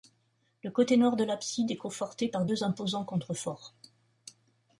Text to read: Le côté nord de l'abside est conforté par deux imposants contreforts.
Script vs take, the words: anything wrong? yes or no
no